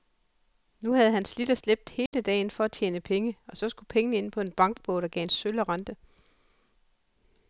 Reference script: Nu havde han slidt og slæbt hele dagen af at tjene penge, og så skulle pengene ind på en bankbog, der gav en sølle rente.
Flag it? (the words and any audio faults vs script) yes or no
yes